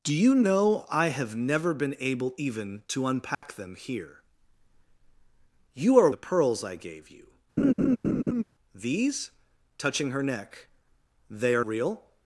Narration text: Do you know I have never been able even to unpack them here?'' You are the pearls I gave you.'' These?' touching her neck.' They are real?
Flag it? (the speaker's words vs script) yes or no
no